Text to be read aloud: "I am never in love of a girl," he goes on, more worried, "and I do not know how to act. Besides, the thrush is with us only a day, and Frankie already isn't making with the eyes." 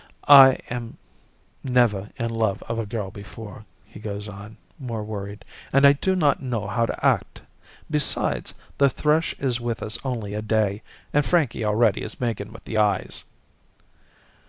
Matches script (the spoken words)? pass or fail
fail